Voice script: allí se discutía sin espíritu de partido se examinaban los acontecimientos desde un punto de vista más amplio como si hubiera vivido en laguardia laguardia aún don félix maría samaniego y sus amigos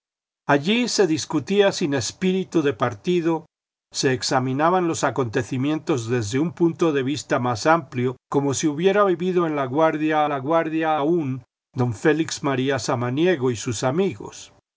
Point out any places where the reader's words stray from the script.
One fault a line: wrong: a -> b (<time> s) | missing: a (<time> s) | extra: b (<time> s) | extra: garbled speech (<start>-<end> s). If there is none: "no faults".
no faults